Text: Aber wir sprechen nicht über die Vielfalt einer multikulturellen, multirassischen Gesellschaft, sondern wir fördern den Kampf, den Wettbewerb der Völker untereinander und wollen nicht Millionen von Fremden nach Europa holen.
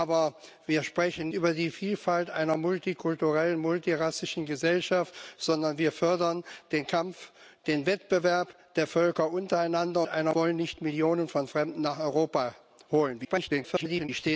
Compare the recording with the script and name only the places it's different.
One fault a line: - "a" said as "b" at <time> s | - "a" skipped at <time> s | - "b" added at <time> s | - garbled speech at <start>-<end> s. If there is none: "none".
- "nicht" skipped at 1.3 s
- "und" said as "einer" at 10.1 s
- garbled speech at 13.2-14.1 s